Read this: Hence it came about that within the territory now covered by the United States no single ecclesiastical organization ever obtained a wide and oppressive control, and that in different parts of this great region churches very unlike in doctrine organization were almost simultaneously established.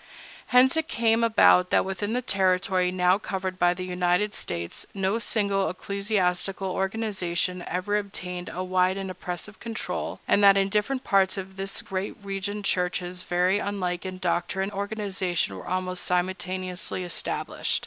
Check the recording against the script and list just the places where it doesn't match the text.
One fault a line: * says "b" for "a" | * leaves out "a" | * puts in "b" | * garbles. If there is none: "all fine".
all fine